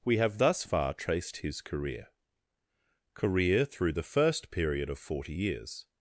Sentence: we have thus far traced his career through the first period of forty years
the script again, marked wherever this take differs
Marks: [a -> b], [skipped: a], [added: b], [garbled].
we have thus far traced his career [added: career] through the first period of forty years